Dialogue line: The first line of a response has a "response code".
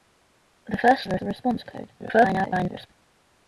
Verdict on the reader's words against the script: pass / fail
fail